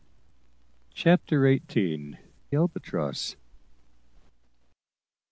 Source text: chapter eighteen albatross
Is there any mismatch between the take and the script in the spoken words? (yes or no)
no